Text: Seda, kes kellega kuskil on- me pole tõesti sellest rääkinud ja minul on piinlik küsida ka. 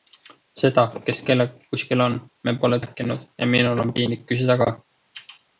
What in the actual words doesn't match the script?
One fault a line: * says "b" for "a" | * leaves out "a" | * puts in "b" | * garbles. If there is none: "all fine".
* leaves out "tõesti sellest"